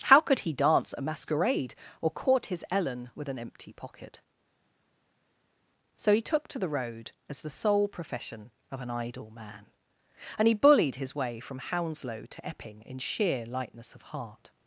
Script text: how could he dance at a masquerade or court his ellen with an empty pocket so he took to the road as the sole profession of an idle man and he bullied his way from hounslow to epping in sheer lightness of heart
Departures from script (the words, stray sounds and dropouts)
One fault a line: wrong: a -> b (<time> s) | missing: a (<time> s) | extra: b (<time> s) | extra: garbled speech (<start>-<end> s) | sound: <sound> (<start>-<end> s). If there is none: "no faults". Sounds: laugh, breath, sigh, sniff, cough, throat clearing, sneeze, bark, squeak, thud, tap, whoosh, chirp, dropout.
missing: at (0.9 s)